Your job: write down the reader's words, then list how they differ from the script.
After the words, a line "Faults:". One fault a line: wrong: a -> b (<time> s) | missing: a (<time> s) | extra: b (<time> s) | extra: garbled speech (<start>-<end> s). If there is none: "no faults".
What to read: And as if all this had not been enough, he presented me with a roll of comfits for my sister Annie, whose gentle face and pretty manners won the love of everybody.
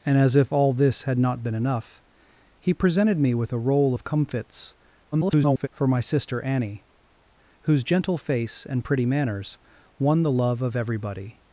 And as if all this had not been enough, he presented me with a roll of comfits [garbled] for my sister Annie, whose gentle face and pretty manners won the love of everybody.
Faults:
extra: garbled speech (5.1-5.7 s)